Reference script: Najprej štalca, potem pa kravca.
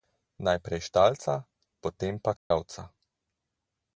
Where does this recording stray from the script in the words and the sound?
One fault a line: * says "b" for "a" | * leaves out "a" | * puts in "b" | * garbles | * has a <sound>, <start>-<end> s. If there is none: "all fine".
* has a dropout, 2.4-2.5 s